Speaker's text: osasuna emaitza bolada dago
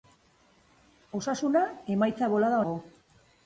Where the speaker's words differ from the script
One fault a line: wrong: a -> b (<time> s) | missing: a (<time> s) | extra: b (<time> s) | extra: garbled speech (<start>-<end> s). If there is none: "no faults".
no faults